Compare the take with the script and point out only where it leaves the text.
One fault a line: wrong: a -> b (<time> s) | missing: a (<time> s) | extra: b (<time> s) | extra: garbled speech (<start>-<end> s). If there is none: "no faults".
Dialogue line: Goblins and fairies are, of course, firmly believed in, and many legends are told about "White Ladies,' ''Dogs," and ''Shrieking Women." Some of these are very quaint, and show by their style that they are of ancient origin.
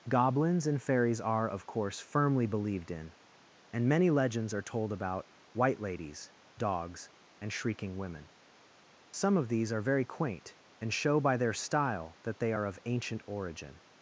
no faults